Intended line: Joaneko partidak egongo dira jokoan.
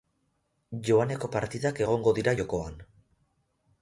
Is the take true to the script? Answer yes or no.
yes